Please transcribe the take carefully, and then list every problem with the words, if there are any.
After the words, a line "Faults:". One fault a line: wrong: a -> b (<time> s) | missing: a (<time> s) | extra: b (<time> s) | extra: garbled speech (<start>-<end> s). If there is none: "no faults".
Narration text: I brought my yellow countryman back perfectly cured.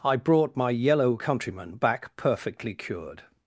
I brought my yellow countryman back perfectly cured.
Faults:
no faults